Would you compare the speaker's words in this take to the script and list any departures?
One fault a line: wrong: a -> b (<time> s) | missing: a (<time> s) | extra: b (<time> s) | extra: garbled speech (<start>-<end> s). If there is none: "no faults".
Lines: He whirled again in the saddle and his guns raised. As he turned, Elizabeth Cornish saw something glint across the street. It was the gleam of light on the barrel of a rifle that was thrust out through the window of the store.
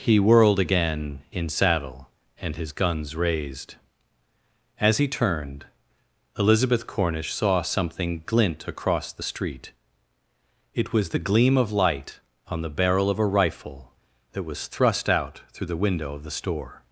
missing: the (1.5 s)